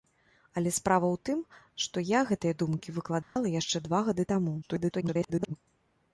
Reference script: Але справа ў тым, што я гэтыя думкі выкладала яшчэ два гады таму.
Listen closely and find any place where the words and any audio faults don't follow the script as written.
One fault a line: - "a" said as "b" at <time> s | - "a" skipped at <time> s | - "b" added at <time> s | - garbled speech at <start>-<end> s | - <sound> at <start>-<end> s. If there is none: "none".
- dropout at 3.2-3.4 s
- garbled speech at 4.6-5.6 s